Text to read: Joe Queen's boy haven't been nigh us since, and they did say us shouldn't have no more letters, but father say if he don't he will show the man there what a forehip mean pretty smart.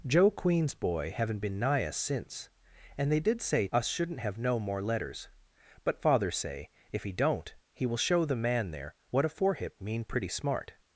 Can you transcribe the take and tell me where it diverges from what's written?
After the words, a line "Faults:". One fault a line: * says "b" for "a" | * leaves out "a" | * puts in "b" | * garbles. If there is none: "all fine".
Joe Queen's boy haven't been nigh us since, and they did say us shouldn't have no more letters, but father say if he don't he will show the man there what a forehip mean pretty smart.
Faults:
all fine